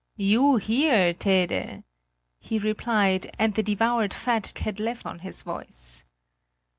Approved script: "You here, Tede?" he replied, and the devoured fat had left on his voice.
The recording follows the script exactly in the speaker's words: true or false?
true